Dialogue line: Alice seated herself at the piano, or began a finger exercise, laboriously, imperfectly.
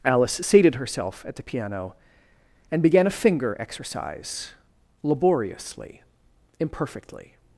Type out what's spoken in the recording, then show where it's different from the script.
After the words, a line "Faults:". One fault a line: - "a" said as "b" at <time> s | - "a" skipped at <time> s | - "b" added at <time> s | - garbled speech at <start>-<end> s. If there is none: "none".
Alice seated herself at the piano, and began a finger exercise, laboriously, imperfectly.
Faults:
- "or" said as "and" at 2.7 s